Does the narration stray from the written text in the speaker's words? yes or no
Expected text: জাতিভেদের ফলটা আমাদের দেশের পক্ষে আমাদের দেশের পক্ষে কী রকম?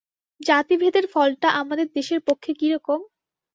yes